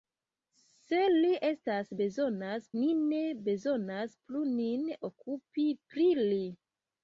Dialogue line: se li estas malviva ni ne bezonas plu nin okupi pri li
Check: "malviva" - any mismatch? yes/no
yes